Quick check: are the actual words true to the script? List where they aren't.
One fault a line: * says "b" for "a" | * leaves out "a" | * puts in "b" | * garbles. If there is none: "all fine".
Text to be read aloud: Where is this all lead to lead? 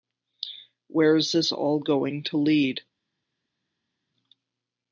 * says "going" for "lead"